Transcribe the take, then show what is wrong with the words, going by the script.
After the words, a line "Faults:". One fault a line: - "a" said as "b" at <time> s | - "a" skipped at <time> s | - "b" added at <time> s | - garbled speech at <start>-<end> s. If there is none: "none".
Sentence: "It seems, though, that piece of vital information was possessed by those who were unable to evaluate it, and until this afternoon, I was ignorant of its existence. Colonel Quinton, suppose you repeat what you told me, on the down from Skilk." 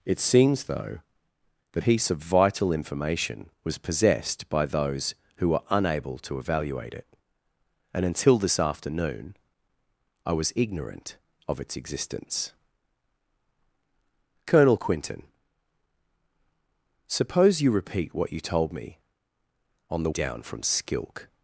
"It seems, though, that piece of vital information was possessed by those who were unable to evaluate it, and until this afternoon, I was ignorant of its existence. Colonel Quinton, suppose you repeat what you told me, on the down from Skilk."
Faults:
none